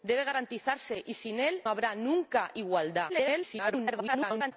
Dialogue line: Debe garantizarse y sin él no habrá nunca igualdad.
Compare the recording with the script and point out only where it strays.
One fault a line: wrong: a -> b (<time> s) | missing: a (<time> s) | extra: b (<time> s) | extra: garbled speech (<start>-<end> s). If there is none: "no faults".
missing: no (1.6 s)
extra: garbled speech (3.1-4.5 s)